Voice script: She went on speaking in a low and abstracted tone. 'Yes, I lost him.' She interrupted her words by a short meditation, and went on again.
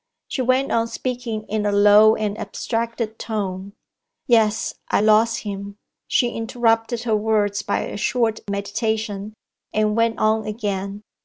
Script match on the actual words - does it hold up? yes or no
yes